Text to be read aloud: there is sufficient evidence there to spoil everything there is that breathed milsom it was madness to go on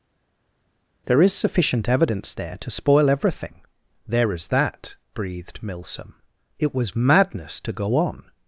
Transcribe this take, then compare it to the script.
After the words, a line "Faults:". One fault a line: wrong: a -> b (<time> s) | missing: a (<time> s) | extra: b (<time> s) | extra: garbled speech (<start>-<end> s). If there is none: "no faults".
there is sufficient evidence there to spoil everything there is that breathed milsom it was madness to go on
Faults:
no faults